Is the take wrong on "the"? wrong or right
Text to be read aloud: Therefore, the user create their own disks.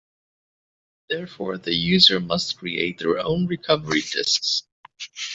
right